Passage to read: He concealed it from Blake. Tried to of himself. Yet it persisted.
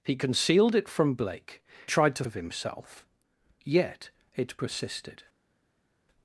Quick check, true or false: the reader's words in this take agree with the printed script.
true